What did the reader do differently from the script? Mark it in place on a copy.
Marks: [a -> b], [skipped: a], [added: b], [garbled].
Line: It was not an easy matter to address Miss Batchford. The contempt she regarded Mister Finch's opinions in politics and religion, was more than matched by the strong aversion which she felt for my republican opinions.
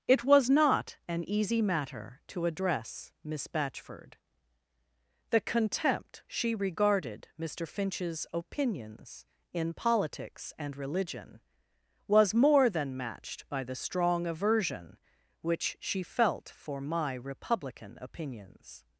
It was not an easy matter to address Miss Batchford. The contempt she regarded Mister Finch's opinions in politics and religion, was more than matched by the strong aversion which she felt for my republican opinions.